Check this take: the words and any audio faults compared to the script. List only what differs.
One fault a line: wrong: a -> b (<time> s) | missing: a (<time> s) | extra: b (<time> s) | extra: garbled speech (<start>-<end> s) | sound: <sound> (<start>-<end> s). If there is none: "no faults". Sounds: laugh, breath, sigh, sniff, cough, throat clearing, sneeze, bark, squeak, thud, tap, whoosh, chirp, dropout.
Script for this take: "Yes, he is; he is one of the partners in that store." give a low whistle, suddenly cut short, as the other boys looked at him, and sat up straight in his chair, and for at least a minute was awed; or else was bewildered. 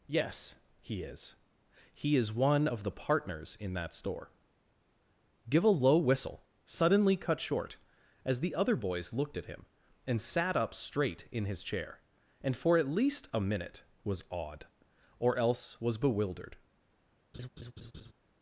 sound: laugh (17.3-18.1 s)